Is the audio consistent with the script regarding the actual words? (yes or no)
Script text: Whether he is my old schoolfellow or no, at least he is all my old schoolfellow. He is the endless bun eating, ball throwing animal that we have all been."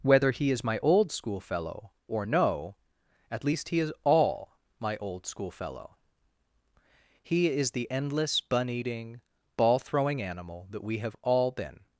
yes